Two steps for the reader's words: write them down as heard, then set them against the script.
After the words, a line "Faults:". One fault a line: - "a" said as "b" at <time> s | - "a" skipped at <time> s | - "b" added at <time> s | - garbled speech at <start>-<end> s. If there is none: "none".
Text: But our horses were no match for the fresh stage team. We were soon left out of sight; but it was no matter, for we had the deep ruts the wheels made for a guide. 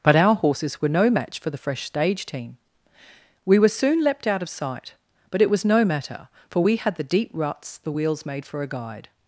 But our horses were no match for the fresh stage team. We were soon leapt out of sight; but it was no matter, for we had the deep ruts the wheels made for a guide.
Faults:
- "left" said as "leapt" at 4.0 s